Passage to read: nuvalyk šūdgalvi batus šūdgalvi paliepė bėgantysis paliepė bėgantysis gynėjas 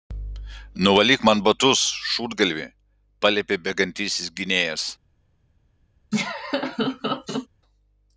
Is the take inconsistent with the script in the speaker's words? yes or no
yes